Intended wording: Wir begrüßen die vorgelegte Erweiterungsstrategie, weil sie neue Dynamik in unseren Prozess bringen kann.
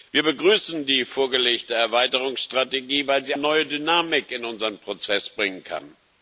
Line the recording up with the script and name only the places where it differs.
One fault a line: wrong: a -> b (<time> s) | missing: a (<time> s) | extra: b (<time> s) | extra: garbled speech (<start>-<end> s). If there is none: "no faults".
no faults